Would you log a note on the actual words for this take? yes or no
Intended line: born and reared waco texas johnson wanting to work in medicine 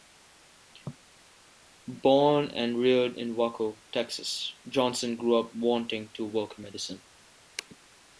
yes